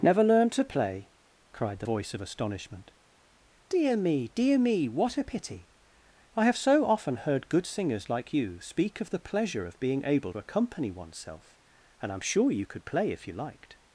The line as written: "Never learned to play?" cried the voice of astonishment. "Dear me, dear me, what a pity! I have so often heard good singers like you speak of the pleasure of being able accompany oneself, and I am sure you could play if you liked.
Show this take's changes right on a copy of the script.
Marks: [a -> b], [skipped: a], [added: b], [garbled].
"Never learned to play?" cried the voice of astonishment. "Dear me, dear me, what a pity! I have so often heard good singers like you speak of the pleasure of being able accompany oneself, and I am sure you could play if you liked.